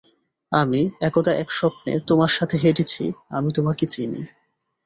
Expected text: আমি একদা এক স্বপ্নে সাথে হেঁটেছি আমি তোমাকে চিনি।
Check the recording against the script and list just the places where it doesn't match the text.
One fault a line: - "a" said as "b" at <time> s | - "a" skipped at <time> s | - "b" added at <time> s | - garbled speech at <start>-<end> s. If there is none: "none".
- "তোমার" added at 2.0 s